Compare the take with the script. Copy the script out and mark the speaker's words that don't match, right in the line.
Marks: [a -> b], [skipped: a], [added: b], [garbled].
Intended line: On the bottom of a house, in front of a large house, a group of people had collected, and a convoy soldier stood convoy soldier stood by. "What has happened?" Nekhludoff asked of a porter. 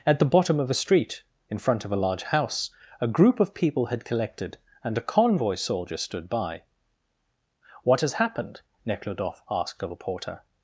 [On -> At] the bottom of a [house, -> street] in front of a large house, a group of people had collected, and a convoy soldier stood [skipped: convoy soldier stood] by. "What has happened?" Nekhludoff asked of a porter.